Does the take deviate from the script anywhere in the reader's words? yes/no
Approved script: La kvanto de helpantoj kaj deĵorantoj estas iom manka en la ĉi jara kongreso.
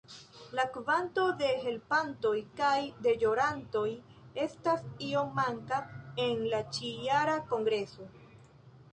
no